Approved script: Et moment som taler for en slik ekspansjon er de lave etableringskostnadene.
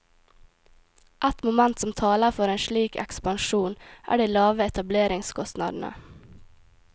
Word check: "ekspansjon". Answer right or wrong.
right